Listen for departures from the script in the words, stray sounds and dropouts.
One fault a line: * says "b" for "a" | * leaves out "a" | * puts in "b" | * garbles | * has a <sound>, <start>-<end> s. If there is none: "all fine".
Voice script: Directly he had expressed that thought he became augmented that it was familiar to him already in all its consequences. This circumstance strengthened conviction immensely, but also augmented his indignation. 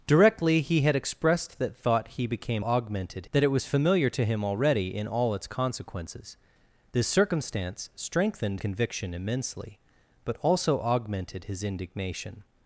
all fine